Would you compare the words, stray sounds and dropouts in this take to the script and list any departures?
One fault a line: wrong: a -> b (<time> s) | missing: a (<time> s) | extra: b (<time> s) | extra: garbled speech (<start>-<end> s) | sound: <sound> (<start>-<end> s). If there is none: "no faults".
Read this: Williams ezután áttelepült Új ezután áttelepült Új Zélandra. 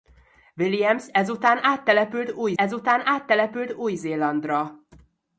no faults